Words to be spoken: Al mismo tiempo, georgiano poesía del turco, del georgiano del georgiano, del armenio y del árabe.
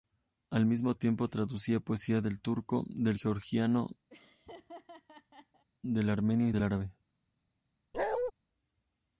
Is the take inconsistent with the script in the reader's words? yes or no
yes